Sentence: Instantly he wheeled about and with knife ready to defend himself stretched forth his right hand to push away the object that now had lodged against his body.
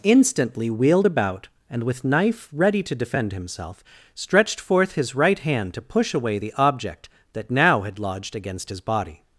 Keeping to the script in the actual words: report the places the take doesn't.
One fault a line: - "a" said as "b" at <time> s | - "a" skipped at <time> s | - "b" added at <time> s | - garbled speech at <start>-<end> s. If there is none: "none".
- "he" skipped at 0.7 s